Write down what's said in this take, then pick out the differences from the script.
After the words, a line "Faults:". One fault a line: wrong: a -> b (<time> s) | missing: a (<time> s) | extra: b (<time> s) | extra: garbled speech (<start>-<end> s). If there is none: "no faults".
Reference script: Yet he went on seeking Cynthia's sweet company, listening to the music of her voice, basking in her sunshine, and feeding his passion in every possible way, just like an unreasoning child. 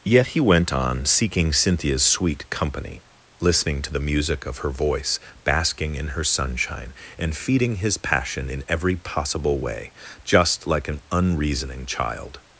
Yet he went on seeking Cynthia's sweet company, listening to the music of her voice, basking in her sunshine, and feeding his passion in every possible way, just like an unreasoning child.
Faults:
no faults